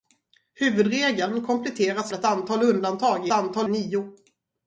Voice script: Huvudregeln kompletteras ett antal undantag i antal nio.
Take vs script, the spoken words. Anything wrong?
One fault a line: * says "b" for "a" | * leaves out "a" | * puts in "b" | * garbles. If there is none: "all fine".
all fine